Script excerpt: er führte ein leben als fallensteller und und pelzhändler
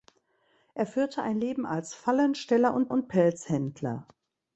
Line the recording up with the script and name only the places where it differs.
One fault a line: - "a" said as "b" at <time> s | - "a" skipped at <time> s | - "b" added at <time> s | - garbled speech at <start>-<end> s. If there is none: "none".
none